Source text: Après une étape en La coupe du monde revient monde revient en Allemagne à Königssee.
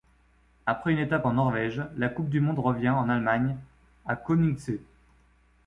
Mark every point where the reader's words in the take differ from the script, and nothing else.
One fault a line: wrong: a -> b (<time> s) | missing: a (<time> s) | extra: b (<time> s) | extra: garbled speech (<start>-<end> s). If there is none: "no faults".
extra: Norvège (1.3 s)
missing: monde revient (2.9 s)